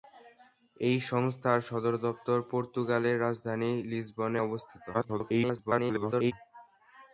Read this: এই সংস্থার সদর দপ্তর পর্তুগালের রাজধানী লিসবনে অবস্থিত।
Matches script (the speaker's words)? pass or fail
fail